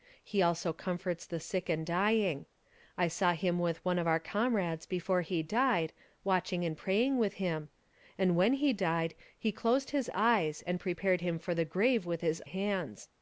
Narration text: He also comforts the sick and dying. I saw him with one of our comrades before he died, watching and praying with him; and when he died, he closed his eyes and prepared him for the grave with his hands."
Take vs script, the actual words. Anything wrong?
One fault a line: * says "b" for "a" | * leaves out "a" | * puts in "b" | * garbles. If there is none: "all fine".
all fine